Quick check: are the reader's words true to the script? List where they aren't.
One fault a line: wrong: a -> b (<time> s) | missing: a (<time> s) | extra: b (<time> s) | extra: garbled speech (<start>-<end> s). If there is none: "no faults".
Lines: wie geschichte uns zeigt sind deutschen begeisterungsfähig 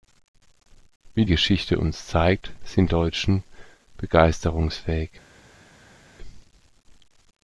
no faults